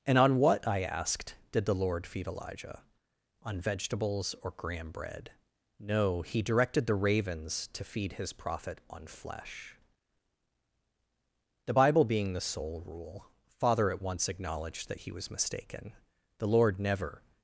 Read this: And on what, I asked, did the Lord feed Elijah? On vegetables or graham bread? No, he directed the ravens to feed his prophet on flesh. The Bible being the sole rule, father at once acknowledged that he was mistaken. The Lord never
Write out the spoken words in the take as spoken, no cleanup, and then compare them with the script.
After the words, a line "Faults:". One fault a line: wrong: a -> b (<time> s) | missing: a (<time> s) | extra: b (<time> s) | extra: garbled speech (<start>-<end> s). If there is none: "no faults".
And on what, I asked, did the Lord feed Elijah? On vegetables or graham bread? No, he directed the ravens to feed his prophet on flesh. The Bible being the sole rule, father at once acknowledged that he was mistaken. The Lord never
Faults:
no faults